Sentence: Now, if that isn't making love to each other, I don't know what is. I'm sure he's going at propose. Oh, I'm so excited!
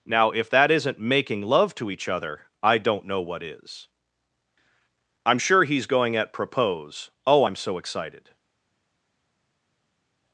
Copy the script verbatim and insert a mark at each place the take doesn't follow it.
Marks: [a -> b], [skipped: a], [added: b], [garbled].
Now, if that isn't making love to each other, I don't know what is. I'm sure he's going at propose. Oh, I'm so excited!